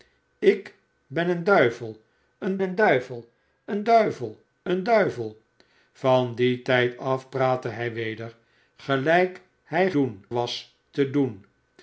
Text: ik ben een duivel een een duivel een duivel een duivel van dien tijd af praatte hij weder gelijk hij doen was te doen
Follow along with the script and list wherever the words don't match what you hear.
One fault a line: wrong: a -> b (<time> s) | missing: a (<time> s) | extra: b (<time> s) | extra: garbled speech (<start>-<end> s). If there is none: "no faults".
no faults